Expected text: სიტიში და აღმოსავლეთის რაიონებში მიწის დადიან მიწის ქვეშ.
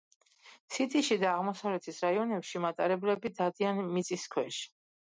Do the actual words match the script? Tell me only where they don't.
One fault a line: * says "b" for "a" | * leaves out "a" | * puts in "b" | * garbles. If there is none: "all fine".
* says "მატარებლები" for "მიწის"